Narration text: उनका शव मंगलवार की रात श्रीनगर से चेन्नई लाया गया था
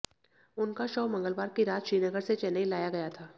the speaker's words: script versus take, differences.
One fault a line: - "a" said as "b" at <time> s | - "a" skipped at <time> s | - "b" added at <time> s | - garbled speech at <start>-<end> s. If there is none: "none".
none